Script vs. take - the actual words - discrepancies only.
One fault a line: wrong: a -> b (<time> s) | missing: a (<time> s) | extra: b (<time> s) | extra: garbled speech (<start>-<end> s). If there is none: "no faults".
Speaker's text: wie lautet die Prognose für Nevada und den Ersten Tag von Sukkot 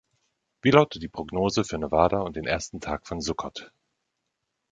no faults